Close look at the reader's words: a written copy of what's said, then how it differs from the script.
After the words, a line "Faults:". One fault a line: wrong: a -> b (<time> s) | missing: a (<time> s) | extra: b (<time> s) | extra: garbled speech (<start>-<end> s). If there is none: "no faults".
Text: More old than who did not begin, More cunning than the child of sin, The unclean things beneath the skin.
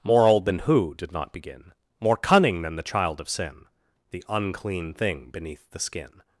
More old than who did not begin, More cunning than the child of sin, The unclean thing beneath the skin.
Faults:
wrong: things -> thing (4.9 s)